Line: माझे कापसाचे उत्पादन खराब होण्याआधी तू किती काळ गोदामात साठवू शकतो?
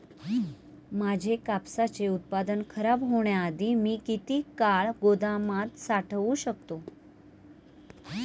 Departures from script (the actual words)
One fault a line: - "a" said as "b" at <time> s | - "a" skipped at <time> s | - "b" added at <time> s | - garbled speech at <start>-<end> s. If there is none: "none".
- "तू" said as "मी" at 3.8 s